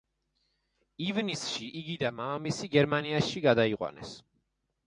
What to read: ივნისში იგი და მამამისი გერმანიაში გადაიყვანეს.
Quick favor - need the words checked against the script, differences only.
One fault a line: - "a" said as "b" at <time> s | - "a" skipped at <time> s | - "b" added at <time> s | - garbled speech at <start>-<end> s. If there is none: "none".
none